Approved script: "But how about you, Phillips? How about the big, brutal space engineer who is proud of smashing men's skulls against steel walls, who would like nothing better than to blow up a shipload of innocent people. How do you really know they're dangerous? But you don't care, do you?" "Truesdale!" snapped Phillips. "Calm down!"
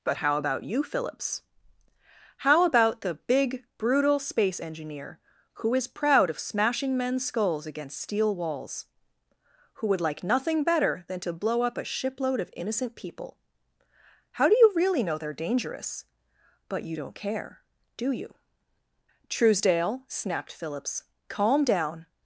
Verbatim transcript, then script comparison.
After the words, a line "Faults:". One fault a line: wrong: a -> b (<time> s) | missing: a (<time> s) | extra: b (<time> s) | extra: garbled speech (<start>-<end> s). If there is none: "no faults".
"But how about you, Phillips? How about the big, brutal space engineer who is proud of smashing men's skulls against steel walls, who would like nothing better than to blow up a shipload of innocent people. How do you really know they're dangerous? But you don't care, do you?" "Truesdale!" snapped Phillips. "Calm down!"
Faults:
no faults